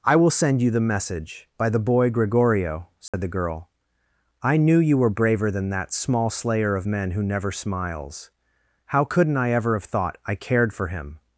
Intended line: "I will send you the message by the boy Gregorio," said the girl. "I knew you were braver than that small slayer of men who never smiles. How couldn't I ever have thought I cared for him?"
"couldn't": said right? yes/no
yes